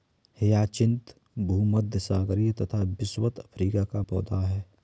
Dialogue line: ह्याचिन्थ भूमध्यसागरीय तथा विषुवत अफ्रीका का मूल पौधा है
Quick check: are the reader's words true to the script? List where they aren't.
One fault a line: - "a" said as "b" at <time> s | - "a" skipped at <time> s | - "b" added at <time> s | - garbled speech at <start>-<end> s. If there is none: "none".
- "मूल" skipped at 4.0 s